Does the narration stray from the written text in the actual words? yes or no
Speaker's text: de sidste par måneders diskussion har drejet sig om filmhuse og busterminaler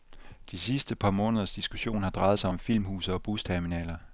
no